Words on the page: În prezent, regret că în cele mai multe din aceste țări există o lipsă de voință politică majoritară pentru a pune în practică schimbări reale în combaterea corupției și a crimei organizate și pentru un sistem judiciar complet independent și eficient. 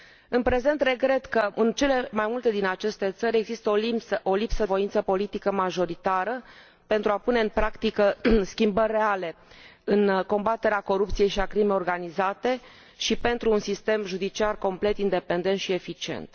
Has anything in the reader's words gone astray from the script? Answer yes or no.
yes